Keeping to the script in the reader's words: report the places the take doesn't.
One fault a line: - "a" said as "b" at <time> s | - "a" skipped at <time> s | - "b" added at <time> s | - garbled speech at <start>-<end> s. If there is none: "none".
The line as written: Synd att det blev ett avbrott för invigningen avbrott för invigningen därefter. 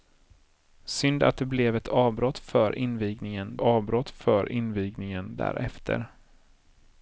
none